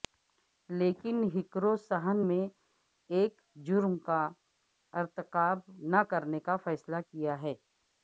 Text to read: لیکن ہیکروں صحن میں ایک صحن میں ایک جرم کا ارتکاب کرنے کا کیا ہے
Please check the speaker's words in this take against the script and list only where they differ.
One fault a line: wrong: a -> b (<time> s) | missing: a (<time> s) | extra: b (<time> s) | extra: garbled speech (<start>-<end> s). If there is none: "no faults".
missing: صحن میں ایک (3.3 s)
extra: نہ (5.9 s)
extra: فیصلہ (6.6 s)